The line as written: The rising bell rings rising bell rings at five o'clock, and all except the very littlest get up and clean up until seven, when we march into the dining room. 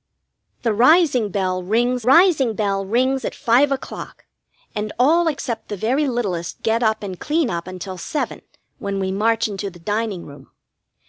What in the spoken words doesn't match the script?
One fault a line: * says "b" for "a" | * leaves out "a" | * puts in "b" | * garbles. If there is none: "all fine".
all fine